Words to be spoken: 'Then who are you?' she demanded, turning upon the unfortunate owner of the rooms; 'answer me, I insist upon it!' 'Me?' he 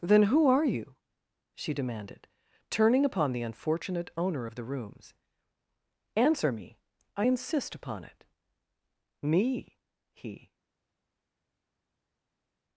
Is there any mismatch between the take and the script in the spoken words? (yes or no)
no